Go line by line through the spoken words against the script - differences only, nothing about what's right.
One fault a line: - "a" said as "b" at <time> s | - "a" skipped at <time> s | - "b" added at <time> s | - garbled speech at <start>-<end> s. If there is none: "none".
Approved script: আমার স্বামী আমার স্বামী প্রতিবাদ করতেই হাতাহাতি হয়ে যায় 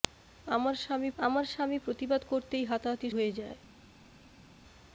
none